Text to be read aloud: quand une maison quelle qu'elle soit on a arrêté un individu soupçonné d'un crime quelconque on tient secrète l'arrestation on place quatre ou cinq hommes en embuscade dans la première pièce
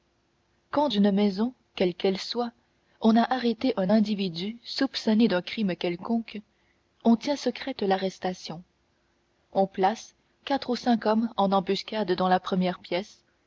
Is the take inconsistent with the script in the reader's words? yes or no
no